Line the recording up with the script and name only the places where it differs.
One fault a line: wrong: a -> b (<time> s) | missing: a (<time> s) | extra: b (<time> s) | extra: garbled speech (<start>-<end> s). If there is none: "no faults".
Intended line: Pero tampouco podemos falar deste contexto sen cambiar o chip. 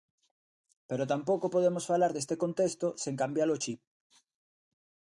no faults